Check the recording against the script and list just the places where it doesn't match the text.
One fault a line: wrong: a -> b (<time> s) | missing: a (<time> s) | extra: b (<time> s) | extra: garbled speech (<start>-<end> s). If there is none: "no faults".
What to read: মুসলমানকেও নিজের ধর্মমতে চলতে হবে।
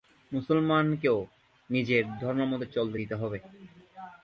extra: দিতে (3.0 s)